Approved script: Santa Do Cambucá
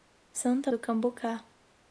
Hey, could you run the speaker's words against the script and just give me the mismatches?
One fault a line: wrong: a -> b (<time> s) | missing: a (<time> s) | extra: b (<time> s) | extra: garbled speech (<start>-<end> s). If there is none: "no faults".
no faults